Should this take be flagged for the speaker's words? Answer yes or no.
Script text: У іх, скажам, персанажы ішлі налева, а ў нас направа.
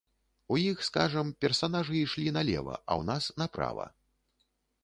no